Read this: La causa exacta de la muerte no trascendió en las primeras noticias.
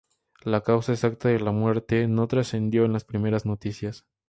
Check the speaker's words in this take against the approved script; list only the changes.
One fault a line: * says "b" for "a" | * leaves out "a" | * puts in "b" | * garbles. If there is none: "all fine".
all fine